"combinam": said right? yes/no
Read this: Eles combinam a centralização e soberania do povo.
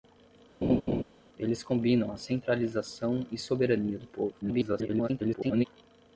yes